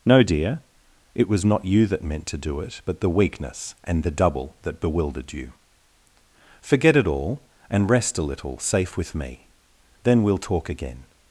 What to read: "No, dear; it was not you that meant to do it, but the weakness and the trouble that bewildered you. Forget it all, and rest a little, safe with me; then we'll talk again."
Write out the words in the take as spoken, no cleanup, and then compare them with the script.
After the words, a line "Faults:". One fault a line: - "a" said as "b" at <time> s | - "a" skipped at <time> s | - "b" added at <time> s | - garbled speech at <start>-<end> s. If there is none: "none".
"No, dear; it was not you that meant to do it, but the weakness and the double that bewildered you. Forget it all, and rest a little, safe with me; then we'll talk again."
Faults:
- "trouble" said as "double" at 4.1 s